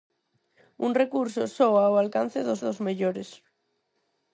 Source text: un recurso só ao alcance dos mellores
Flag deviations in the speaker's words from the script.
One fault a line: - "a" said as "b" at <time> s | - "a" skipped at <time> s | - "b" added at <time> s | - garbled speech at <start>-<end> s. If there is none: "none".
- "dos" added at 2.6 s